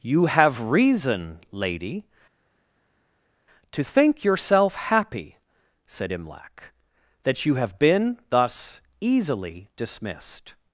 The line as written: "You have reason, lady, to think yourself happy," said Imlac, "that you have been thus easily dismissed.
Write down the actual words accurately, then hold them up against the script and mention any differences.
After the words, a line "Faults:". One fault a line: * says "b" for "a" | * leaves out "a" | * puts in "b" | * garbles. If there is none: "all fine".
"You have reason, lady, to think yourself happy," said Imlac, "that you have been thus easily dismissed.
Faults:
all fine